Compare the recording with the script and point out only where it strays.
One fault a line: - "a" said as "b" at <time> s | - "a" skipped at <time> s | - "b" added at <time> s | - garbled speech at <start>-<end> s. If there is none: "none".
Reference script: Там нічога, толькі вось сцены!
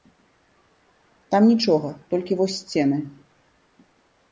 none